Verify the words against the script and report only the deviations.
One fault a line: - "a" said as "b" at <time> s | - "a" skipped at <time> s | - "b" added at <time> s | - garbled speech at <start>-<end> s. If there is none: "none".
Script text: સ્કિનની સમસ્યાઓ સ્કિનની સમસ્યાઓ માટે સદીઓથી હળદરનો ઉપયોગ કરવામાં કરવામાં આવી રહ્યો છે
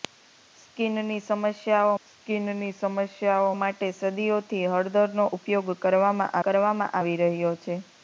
none